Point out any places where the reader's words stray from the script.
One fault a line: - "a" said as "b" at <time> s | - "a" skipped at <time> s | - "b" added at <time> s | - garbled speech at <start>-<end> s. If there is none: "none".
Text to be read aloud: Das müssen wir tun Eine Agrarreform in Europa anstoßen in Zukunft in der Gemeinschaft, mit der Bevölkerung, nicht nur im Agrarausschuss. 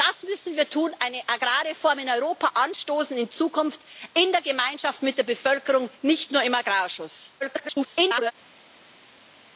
- garbled speech at 7.4-8.3 s